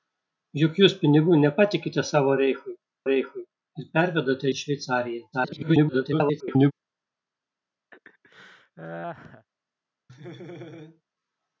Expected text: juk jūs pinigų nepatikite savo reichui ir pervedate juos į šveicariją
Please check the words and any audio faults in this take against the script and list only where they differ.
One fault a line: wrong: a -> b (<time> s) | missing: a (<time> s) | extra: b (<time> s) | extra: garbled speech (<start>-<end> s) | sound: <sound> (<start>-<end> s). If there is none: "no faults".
extra: reichui (3.1 s)
missing: juos (4.5 s)
extra: garbled speech (5.3-6.7 s)
sound: laugh (7.9-9.5 s)
sound: laugh (10.1-11.0 s)